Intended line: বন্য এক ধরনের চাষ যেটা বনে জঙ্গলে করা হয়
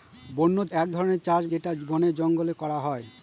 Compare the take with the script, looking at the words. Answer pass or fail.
pass